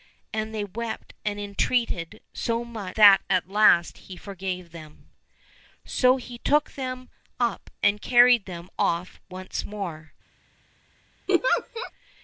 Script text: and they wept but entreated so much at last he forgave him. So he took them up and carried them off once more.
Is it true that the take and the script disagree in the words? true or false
true